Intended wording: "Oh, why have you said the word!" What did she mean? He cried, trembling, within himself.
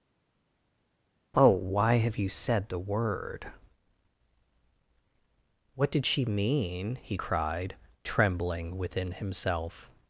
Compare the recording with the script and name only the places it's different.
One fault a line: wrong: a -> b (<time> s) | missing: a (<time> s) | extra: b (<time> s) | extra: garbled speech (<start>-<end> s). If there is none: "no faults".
no faults